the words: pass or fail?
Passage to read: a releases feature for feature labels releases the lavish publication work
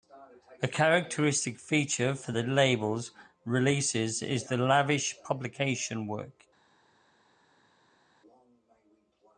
fail